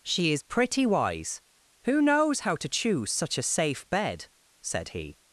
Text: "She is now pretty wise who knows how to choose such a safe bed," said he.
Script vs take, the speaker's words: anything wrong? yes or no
yes